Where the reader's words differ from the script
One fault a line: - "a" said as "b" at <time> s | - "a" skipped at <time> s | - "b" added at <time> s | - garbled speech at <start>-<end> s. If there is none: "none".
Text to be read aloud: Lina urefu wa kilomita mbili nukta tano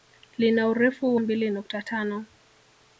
- "wa kilomita" skipped at 1.1 s